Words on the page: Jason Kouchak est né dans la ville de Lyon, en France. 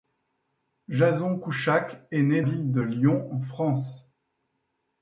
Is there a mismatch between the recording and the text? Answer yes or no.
yes